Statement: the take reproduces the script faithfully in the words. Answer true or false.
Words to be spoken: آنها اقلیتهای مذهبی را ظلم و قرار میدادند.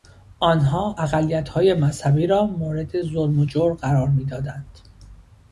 false